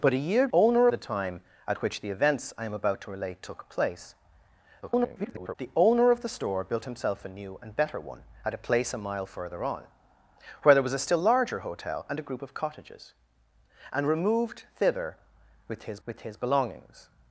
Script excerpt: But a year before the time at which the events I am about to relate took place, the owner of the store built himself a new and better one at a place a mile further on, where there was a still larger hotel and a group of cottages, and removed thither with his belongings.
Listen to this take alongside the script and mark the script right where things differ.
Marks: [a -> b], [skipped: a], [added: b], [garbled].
But a year [before -> owner] the time at which the events I am about to relate took place, [garbled] the owner of the store built himself a new and better one at a place a mile further on, where there was a still larger hotel and a group of cottages, and removed thither with his [added: with his] belongings.